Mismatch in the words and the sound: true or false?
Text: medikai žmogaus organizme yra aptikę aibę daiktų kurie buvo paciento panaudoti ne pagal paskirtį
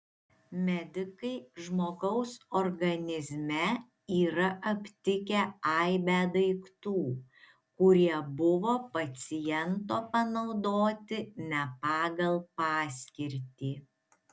false